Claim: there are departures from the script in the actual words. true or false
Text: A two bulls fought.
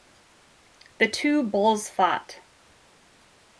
true